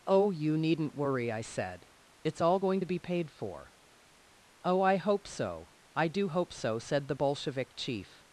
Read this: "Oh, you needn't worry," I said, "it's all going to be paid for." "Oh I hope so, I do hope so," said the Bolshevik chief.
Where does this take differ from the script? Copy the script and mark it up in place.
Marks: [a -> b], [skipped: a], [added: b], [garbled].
"Oh, you needn't worry," I said, "it's all going to be paid for." "Oh I hope so, I do hope so," said the Bolshevik chief.